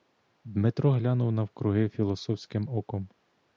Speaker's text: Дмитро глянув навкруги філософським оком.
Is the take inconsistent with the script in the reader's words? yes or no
no